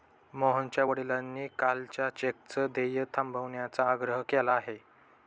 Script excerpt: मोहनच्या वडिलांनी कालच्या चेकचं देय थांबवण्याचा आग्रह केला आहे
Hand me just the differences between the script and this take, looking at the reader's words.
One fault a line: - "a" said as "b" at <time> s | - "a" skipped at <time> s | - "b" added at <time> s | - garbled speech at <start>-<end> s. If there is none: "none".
none